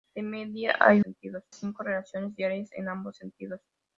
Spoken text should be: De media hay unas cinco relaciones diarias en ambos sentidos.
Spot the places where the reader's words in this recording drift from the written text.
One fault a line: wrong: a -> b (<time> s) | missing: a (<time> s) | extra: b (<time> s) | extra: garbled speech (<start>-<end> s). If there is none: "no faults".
wrong: unas -> sentidos (1.0 s)